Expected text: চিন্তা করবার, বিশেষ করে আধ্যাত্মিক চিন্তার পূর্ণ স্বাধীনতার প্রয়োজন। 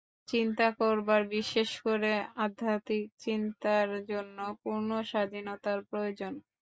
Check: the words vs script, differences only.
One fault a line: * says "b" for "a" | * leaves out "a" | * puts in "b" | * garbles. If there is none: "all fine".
* puts in "জন্য"